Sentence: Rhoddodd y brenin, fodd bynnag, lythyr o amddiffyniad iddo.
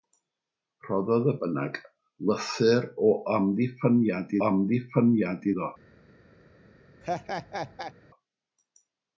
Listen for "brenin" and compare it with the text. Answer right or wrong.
wrong